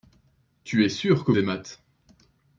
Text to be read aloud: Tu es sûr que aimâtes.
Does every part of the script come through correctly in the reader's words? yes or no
yes